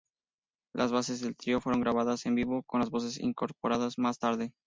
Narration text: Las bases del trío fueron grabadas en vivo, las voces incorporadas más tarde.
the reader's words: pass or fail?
fail